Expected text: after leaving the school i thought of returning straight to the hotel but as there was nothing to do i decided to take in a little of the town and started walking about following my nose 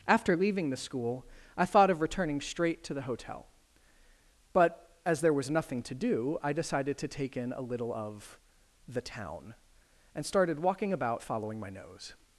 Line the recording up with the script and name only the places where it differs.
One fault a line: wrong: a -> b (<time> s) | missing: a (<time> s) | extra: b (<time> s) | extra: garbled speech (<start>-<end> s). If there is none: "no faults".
no faults